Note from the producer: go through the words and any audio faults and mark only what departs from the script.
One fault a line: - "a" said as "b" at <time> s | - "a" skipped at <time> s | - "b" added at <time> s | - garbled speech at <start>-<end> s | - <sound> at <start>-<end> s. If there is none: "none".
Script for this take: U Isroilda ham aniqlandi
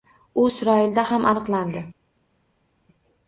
none